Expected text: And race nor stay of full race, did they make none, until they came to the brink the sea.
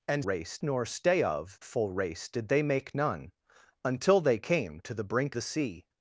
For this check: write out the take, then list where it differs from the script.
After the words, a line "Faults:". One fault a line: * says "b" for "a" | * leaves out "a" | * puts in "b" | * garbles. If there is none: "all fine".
And race nor stay of full race, did they make none, until they came to the brink the sea.
Faults:
all fine